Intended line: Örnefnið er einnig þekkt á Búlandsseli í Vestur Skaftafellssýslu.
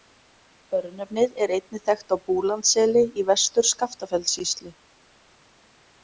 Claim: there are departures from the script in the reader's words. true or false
false